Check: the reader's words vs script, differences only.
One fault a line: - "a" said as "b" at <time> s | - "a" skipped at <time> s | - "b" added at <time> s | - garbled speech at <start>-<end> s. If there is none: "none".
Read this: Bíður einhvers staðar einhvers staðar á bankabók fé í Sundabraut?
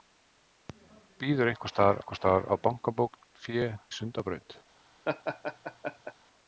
none